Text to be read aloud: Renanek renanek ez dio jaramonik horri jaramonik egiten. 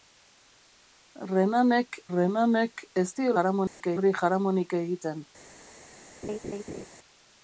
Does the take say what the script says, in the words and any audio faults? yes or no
no